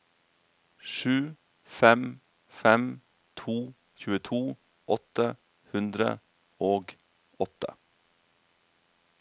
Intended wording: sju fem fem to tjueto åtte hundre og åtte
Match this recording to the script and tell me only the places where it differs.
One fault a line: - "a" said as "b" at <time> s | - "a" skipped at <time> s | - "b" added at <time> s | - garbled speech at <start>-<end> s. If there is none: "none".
none